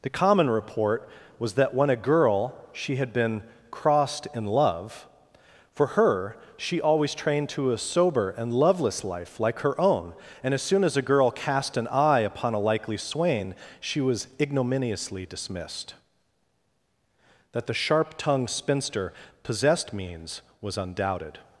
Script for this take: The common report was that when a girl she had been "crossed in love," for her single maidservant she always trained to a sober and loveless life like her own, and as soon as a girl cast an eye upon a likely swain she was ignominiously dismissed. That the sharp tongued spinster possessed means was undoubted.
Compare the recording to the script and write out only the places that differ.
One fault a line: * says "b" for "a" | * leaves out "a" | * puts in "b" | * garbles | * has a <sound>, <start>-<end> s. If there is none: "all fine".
* leaves out "single maidservant"